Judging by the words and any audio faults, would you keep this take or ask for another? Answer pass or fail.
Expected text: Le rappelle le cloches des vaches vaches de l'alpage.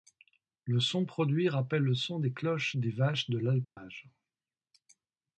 fail